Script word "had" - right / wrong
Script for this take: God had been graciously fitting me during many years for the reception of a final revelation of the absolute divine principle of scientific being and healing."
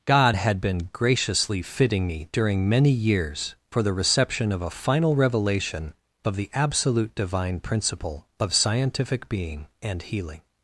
right